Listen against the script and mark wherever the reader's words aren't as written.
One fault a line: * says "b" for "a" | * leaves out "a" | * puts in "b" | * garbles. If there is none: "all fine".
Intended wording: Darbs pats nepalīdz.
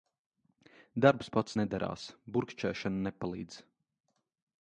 * puts in "nedarās Burkšķēšana"